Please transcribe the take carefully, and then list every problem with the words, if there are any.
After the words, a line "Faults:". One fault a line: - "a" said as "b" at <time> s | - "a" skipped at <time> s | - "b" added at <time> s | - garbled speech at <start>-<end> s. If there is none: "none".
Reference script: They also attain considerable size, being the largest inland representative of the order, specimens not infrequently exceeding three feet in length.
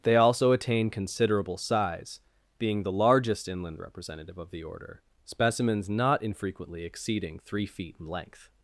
They also attain considerable size, being the largest inland representative of the order, specimens not infrequently exceeding three feet in length.
Faults:
none